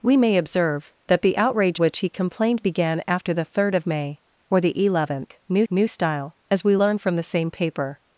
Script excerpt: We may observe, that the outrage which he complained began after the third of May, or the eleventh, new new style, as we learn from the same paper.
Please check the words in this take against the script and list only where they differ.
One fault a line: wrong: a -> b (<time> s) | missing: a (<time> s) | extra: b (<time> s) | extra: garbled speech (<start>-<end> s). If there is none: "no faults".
no faults